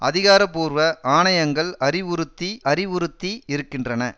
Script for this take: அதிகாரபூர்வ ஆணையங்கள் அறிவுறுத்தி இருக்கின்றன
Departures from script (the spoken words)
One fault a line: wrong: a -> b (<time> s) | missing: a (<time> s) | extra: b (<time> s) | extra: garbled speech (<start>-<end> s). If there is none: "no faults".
extra: அறிவுறுத்தி (2.7 s)